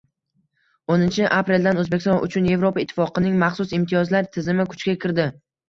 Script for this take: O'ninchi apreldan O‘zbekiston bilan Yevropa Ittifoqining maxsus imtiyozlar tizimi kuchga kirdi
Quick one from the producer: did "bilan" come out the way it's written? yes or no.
no